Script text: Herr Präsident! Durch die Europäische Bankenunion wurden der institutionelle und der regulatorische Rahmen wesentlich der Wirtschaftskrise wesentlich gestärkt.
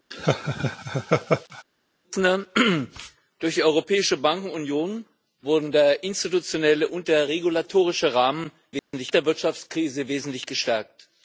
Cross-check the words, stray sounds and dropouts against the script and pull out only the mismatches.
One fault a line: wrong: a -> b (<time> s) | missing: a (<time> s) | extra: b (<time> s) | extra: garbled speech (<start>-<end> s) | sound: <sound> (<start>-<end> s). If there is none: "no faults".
sound: laugh (0.1-1.6 s)
sound: dropout (8.8-8.9 s)